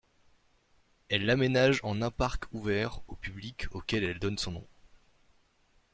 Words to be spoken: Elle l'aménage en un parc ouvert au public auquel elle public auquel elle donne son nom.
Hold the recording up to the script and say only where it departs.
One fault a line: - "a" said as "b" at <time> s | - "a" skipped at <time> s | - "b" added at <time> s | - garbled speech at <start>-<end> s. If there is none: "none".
- "public auquel elle" skipped at 4.2 s